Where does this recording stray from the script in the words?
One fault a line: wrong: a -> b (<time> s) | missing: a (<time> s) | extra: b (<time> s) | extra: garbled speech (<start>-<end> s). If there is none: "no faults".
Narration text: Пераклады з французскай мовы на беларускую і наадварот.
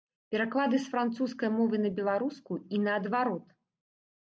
no faults